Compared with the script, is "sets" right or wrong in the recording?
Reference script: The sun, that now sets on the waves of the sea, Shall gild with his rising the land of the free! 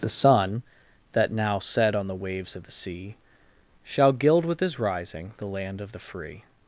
wrong